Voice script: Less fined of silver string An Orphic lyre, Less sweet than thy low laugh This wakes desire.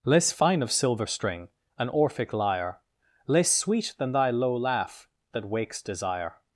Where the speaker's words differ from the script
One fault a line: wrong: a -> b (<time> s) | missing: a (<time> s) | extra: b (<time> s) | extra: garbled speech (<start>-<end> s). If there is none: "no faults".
wrong: fined -> fine (0.3 s)
wrong: This -> That (5.3 s)